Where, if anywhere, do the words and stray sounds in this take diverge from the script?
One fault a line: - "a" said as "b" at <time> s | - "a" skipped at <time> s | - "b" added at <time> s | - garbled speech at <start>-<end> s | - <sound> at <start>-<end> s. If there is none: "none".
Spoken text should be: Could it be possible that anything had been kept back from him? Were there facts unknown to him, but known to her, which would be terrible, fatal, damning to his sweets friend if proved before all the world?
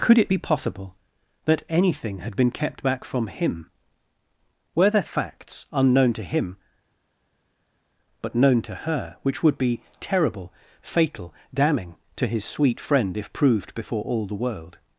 - "sweets" said as "sweet" at 12.4 s